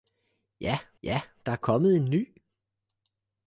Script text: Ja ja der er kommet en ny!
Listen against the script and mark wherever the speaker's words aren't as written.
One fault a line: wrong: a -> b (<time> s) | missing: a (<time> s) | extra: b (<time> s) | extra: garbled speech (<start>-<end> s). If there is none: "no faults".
no faults